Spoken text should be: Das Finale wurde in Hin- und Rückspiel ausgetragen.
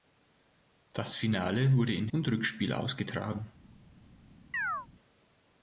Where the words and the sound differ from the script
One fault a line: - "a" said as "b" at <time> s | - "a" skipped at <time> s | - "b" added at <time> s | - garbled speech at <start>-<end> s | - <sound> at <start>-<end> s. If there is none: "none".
- "Hin" skipped at 2.1 s
- chirp at 4.5-4.9 s